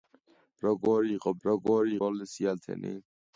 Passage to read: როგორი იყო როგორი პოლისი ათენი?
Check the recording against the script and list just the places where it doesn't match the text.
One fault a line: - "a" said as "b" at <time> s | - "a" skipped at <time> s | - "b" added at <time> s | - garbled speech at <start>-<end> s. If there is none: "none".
none